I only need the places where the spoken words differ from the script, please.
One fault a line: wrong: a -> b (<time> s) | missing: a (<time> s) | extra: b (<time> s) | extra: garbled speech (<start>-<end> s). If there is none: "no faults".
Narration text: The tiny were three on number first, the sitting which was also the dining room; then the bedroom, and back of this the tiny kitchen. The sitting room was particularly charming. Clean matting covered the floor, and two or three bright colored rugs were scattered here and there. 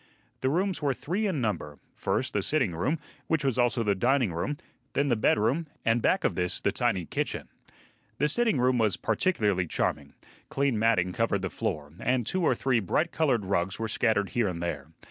wrong: tiny -> rooms (0.5 s)
wrong: on -> in (1.3 s)
extra: room (2.7 s)